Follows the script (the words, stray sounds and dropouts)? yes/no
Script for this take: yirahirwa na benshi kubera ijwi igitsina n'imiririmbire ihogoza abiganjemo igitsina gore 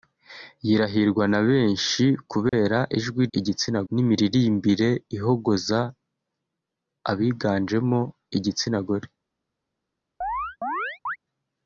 no